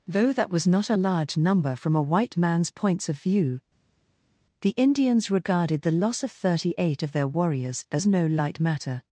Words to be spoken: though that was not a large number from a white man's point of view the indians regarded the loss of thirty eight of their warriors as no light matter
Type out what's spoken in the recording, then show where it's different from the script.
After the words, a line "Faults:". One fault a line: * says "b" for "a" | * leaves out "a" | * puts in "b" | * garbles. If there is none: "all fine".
though that was not a large number from a white man's points of view the indians regarded the loss of thirty eight of their warriors as no light matter
Faults:
* says "points" for "point"